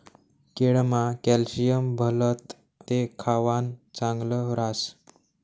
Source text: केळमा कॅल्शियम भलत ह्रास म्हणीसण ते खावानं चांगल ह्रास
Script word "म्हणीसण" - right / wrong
wrong